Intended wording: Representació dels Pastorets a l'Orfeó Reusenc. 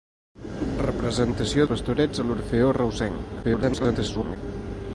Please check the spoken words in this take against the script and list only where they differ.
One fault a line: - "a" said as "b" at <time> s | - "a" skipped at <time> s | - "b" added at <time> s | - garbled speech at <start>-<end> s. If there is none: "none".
- "dels" skipped at 1.7 s
- garbled speech at 3.4-4.4 s